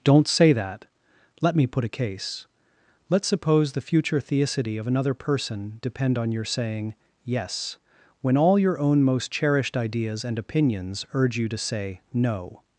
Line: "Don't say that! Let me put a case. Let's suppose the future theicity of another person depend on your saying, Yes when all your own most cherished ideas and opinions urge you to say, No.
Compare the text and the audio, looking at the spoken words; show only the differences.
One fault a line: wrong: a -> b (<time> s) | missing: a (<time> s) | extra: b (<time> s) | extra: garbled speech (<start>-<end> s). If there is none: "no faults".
no faults